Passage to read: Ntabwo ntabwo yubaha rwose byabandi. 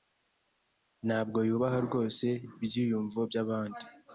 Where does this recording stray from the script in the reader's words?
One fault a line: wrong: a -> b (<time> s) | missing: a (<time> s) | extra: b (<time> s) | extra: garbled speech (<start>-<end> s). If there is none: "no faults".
missing: ntabwo (1.4 s)
extra: ibyiyumvo (2.6 s)